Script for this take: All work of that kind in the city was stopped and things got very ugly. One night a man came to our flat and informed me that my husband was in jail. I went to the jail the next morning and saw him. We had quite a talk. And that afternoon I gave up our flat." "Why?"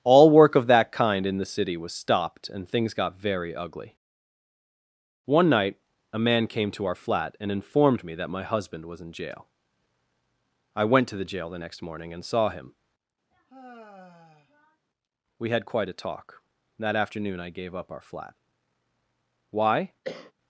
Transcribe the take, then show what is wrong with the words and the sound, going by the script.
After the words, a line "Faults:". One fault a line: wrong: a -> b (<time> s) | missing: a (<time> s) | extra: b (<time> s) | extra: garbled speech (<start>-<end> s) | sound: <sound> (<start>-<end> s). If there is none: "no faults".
All work of that kind in the city was stopped and things got very ugly. One night a man came to our flat and informed me that my husband was in jail. I went to the jail the next morning and saw him. We had quite a talk. that afternoon I gave up our flat." "Why?"
Faults:
sound: sigh (13.3-14.8 s)
missing: And (16.4 s)
sound: cough (20.0-20.3 s)